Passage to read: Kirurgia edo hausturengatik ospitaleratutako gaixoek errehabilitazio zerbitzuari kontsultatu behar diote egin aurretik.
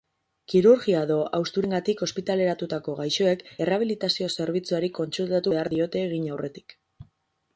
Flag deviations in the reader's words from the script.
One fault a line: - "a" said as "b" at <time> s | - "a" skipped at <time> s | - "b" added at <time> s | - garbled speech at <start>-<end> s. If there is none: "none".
none